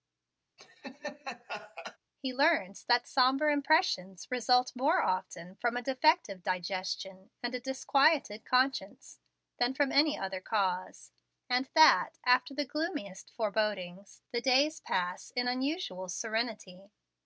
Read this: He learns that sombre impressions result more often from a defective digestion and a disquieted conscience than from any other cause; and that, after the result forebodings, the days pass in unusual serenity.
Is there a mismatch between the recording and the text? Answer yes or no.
yes